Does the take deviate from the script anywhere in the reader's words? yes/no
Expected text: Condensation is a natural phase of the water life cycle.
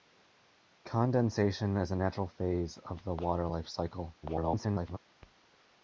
yes